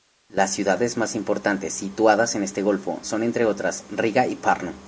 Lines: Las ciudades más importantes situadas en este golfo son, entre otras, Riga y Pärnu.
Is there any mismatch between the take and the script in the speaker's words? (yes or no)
no